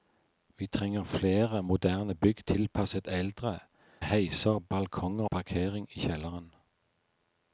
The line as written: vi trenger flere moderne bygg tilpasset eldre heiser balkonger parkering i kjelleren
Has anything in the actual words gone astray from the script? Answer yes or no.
no